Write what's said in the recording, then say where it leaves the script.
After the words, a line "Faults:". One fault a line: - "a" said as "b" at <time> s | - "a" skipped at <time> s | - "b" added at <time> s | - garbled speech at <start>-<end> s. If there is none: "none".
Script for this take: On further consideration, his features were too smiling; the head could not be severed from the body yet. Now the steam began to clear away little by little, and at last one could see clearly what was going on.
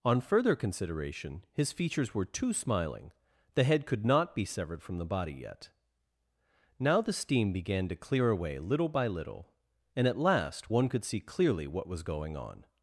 On further consideration, his features were too smiling; the head could not be severed from the body yet. Now the steam began to clear away little by little, and at last one could see clearly what was going on.
Faults:
none